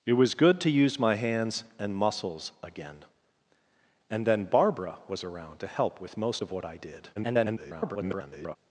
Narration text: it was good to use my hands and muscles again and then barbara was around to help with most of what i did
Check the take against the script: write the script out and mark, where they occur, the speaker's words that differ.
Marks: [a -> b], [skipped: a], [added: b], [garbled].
it was good to use my hands and muscles again and then barbara was around to help with most of what i did [garbled]